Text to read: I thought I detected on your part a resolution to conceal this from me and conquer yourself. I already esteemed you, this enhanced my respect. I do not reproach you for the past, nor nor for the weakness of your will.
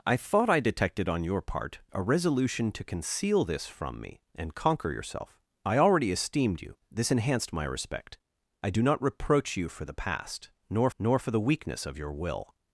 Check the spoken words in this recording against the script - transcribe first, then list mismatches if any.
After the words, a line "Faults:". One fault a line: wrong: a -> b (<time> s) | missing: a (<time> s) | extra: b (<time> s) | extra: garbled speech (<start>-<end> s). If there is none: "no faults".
I thought I detected on your part a resolution to conceal this from me and conquer yourself. I already esteemed you, this enhanced my respect. I do not reproach you for the past, nor nor for the weakness of your will.
Faults:
no faults